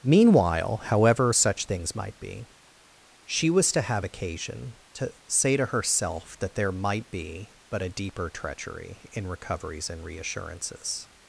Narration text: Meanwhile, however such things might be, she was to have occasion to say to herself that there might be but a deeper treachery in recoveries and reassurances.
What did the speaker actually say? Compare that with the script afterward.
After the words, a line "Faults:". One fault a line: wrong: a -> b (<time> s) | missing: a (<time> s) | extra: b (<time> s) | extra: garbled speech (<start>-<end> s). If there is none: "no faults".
Meanwhile, however such things might be, she was to have occasion to say to herself that there might be but a deeper treachery in recoveries and reassurances.
Faults:
no faults